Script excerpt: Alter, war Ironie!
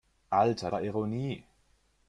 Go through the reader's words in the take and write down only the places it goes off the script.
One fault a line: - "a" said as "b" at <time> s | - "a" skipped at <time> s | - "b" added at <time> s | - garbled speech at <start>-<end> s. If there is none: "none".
none